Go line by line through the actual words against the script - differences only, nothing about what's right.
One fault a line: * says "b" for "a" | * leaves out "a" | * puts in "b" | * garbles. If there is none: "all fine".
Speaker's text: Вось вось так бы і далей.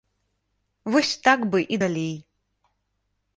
* leaves out "вось"